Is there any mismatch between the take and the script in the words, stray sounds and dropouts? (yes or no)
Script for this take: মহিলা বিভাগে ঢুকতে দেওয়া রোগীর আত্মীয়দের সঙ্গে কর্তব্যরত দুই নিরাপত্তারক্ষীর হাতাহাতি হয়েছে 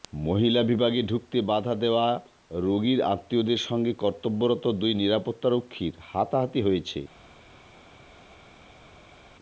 yes